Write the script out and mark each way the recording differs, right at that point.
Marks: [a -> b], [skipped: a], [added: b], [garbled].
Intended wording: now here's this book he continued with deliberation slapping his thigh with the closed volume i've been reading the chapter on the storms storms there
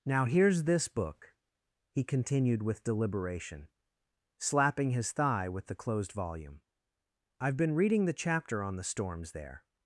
now here's this book he continued with deliberation slapping his thigh with the closed volume i've been reading the chapter on the storms [skipped: storms] there